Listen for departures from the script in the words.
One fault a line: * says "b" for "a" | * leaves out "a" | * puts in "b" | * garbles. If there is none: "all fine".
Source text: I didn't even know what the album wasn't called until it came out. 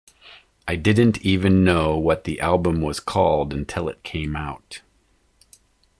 * says "was" for "wasn't"